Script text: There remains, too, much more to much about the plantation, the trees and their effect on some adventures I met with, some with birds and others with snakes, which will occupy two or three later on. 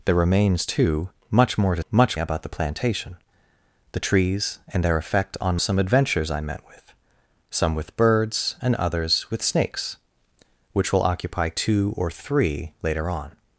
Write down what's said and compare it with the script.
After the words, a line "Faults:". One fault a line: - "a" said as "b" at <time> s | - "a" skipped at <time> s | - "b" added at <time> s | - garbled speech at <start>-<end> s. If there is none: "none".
There remains, too, much more to much about the plantation, the trees and their effect on some adventures I met with, some with birds and others with snakes, which will occupy two or three later on.
Faults:
none